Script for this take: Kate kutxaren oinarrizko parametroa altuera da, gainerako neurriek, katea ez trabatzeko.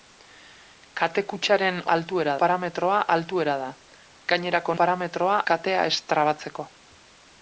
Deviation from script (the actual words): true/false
true